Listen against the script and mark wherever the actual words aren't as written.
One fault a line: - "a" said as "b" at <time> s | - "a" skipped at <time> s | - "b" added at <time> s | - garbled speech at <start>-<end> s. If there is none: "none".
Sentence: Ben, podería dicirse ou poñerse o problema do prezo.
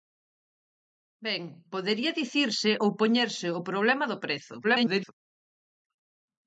- garbled speech at 4.6-5.1 s